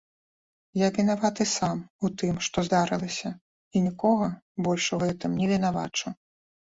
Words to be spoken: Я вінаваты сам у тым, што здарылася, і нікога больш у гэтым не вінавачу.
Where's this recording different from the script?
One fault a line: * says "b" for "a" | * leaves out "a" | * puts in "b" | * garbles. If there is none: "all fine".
all fine